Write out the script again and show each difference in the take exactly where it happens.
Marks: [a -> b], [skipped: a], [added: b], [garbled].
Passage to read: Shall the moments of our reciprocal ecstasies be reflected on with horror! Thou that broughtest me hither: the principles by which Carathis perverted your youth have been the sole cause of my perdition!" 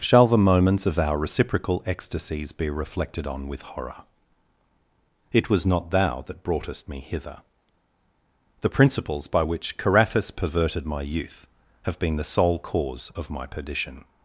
Shall the moments of our reciprocal ecstasies be reflected on with horror! [added: It was not] Thou that broughtest me hither: the principles by which Carathis perverted [your -> my] youth have been the sole cause of my perdition!"